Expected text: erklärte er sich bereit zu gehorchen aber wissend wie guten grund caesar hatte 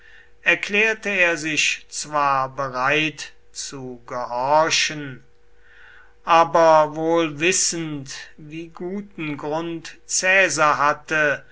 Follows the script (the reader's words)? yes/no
no